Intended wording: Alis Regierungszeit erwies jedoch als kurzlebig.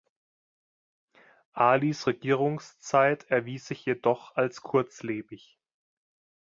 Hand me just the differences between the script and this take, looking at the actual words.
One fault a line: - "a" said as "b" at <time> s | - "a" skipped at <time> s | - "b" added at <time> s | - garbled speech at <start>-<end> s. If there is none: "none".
- "sich" added at 3.7 s